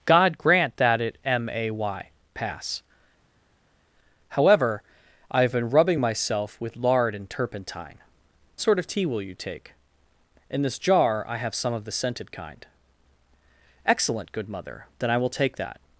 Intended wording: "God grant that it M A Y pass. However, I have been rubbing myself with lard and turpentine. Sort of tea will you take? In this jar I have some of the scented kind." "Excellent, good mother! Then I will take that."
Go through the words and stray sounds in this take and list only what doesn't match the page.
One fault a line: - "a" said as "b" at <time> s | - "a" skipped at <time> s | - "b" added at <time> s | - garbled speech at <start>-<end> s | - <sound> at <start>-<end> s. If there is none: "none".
none